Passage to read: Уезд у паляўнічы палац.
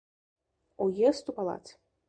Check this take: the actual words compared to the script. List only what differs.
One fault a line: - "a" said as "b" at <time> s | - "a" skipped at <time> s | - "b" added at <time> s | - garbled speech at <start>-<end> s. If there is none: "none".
- "паляўнічы" skipped at 1.4 s